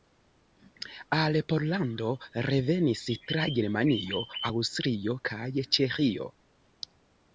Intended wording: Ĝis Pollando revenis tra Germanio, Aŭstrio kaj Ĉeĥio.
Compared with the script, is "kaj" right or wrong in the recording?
right